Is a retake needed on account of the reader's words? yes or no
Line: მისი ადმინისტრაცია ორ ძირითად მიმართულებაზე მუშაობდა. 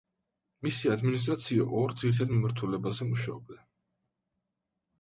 no